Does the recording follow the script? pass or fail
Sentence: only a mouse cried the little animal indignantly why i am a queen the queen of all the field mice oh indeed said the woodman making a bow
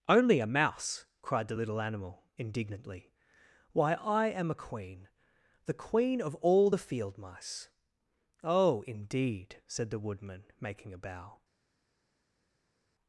pass